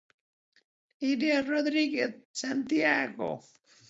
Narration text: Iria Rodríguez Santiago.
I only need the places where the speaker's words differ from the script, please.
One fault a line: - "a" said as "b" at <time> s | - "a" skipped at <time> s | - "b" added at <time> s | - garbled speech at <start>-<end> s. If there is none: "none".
none